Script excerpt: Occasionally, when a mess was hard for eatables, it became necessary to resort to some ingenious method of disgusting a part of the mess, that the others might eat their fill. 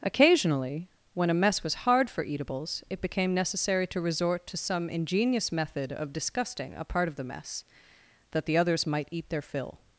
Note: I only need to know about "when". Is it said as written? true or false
true